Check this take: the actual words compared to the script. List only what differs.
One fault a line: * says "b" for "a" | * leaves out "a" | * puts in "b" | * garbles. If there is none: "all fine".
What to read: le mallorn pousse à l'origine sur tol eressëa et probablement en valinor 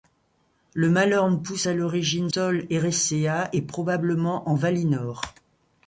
* leaves out "sur"